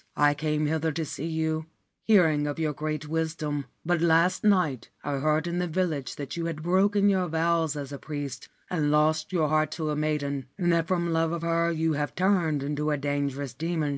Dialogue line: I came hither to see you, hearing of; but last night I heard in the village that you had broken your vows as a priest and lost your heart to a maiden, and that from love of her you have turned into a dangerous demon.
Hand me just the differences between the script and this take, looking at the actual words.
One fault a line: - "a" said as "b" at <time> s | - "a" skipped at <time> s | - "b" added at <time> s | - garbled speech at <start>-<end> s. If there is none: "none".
- "your great wisdom" added at 2.6 s